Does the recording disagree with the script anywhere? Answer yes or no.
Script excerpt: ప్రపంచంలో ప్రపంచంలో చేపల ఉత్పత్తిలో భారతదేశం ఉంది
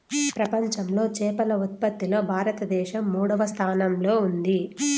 yes